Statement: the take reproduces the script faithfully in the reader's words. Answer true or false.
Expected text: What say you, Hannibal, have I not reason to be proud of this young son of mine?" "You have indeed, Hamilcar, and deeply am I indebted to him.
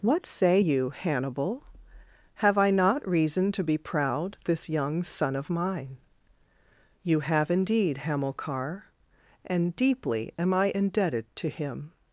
false